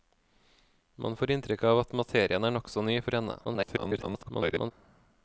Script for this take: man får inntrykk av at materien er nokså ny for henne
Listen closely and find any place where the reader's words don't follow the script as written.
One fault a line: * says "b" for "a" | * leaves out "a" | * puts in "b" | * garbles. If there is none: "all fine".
* garbles